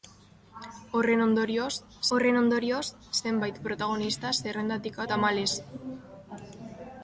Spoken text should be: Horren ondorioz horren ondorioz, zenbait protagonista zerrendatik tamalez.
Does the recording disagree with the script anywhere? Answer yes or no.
no